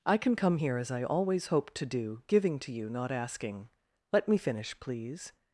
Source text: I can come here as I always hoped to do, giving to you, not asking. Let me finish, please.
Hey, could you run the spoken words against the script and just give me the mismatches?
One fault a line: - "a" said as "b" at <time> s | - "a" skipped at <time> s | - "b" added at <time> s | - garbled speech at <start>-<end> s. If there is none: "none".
none